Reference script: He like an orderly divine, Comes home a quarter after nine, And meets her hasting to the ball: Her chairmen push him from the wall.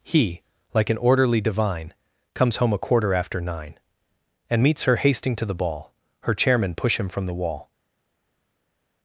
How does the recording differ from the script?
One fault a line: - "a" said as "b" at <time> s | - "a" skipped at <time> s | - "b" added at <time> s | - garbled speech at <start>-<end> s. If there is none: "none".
none